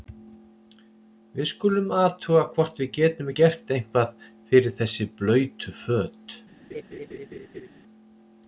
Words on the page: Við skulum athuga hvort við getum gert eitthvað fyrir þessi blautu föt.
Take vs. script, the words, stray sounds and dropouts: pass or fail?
fail